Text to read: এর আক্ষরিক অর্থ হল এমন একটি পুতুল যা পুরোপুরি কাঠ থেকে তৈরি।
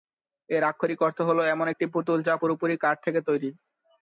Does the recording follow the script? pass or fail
pass